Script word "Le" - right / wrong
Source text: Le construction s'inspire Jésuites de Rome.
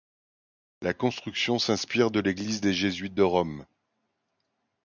wrong